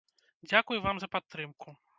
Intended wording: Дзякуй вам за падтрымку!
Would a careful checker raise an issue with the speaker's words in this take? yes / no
no